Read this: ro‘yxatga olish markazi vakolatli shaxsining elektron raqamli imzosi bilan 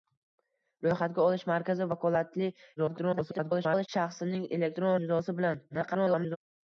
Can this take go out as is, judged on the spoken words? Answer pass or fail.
fail